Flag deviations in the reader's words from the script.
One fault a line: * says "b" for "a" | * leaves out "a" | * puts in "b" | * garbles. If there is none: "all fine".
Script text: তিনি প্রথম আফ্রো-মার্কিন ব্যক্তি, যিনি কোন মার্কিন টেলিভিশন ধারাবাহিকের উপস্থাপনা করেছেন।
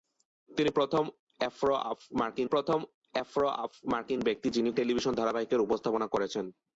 * puts in "প্রথম আফ্রো-মার্কিন"
* leaves out "কোন মার্কিন"